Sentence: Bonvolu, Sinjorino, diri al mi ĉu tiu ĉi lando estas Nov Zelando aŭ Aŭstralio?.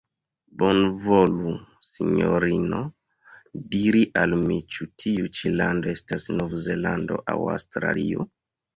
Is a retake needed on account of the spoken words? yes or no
no